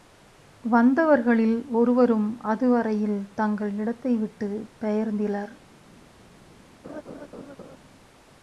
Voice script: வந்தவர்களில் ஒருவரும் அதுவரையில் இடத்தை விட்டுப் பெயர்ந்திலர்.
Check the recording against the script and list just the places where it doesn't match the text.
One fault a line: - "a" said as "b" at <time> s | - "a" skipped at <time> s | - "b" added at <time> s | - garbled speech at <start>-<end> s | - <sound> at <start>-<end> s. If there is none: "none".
- "தங்கள்" added at 3.3 s
- laugh at 6.8-7.8 s